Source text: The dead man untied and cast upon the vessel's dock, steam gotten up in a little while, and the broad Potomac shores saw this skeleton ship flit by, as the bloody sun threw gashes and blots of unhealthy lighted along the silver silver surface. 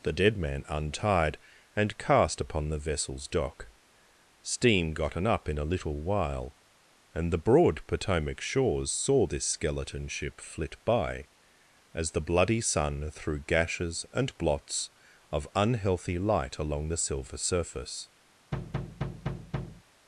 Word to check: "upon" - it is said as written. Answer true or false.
true